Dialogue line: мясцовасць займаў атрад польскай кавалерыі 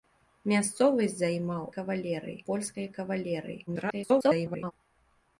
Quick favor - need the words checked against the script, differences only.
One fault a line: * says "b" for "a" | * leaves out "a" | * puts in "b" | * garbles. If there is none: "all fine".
* says "кавалерыі" for "атрад"
* garbles